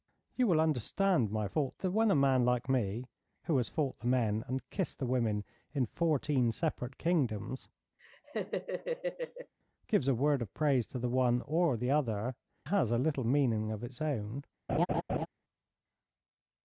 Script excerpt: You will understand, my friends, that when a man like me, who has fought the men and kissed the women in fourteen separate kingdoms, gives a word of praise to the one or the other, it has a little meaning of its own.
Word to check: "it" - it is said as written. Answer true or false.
false